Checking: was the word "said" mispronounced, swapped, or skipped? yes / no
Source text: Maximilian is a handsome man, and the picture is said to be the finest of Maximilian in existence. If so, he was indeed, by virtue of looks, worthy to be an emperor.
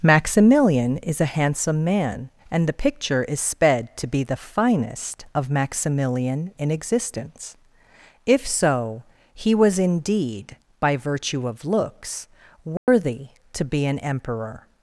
yes